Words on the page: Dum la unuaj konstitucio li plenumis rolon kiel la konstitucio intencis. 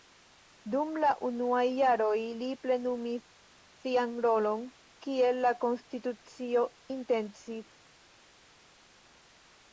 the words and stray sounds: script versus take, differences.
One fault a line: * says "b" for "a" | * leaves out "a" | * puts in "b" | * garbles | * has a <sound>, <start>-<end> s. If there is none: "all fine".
* says "jaroj" for "konstitucio"
* puts in "sian"